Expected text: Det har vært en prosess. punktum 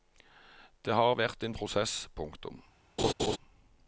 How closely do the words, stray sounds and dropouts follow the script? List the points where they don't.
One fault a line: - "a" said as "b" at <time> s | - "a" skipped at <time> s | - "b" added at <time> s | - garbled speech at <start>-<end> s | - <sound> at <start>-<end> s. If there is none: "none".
- laugh at 3.0-3.4 s